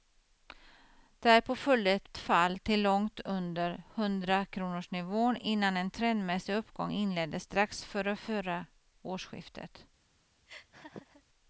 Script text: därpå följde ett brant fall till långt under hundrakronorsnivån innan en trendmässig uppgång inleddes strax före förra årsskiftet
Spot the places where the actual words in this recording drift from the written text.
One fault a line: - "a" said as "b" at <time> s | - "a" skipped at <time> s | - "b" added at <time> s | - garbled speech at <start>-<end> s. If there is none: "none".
- "brant" skipped at 2.1 s